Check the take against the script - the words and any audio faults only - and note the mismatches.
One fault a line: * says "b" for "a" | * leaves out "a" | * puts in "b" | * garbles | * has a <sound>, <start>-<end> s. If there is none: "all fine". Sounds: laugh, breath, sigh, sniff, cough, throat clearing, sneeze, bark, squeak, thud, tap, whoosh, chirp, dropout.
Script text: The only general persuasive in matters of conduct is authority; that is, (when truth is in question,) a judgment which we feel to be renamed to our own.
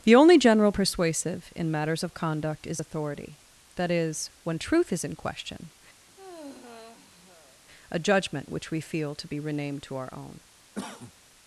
* has a sigh, 6.1-7.6 s
* has a cough, 10.7-11.1 s